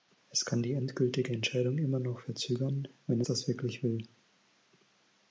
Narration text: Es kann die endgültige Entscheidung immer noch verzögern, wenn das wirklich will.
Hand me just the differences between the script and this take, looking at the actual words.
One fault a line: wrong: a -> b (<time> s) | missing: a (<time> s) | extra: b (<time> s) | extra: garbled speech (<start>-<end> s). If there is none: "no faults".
no faults